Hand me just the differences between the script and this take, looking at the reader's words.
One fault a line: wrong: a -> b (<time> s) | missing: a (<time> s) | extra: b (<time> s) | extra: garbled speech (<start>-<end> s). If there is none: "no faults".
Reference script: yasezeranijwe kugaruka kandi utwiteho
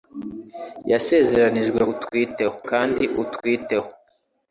wrong: kugaruka -> utwiteho (1.9 s)